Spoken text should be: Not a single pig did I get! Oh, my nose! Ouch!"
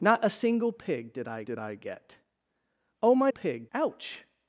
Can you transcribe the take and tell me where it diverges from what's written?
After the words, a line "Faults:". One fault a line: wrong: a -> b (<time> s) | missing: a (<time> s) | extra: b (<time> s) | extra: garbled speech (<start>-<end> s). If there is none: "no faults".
Not a single pig did I did I get! Oh, my pig! Ouch!"
Faults:
extra: did I (1.4 s)
wrong: nose -> pig (3.3 s)